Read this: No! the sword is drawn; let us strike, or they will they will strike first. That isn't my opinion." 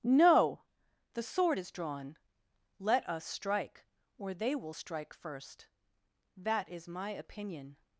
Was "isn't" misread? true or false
true